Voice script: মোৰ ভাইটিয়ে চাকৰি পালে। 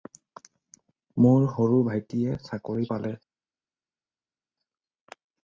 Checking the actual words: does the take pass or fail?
fail